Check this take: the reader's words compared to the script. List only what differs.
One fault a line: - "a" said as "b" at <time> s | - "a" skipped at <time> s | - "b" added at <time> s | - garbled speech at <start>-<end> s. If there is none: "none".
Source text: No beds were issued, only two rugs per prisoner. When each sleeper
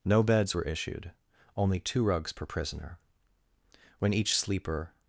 none